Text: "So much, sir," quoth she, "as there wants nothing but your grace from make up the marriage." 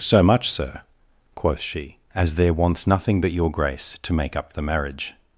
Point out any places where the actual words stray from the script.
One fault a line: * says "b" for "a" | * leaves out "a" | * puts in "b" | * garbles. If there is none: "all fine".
* says "to" for "from"